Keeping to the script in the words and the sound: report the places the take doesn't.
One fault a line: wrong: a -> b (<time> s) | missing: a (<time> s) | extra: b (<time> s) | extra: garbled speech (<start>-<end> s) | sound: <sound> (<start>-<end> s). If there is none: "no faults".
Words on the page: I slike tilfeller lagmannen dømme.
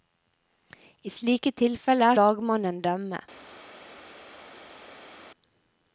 no faults